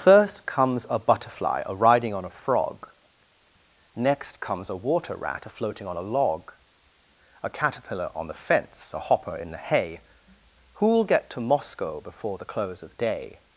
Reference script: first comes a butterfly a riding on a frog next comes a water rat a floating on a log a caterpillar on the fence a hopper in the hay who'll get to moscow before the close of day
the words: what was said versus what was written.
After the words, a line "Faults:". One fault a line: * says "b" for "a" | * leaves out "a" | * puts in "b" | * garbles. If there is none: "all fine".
first comes a butterfly a riding on a frog next comes a water rat a floating on a log a caterpillar on the fence a hopper in the hay who'll get to moscow before the close of day
Faults:
all fine